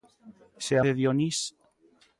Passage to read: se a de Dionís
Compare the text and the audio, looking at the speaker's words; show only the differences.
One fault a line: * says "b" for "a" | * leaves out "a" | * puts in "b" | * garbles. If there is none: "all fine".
all fine